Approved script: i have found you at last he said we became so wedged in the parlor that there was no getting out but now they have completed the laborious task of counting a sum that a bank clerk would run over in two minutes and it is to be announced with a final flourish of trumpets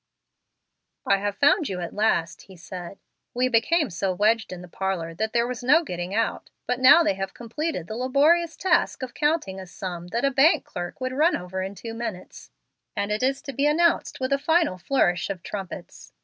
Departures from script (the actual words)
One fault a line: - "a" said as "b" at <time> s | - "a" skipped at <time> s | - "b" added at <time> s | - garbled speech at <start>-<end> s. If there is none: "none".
none